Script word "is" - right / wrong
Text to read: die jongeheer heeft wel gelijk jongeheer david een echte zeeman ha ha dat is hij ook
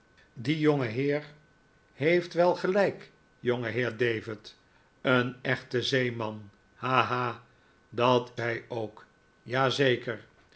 wrong